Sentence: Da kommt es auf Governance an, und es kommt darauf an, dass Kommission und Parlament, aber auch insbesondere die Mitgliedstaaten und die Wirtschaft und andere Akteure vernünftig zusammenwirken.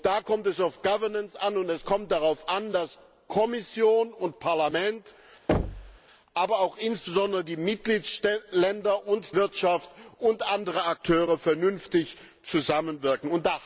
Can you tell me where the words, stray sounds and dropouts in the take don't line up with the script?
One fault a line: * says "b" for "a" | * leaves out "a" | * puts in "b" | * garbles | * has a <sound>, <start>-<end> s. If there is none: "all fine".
* has a thud, 5.5-6.0 s
* leaves out "die"